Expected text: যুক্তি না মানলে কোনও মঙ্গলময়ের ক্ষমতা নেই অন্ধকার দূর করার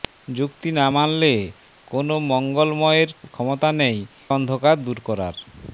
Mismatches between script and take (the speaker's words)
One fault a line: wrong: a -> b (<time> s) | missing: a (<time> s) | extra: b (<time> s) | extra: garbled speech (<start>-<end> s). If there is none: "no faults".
no faults